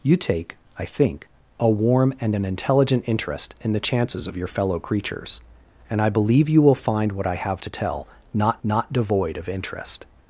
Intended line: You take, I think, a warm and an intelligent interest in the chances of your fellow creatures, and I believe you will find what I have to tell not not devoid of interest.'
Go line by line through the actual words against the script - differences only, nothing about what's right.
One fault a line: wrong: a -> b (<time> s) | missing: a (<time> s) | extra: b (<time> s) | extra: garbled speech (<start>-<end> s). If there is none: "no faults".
no faults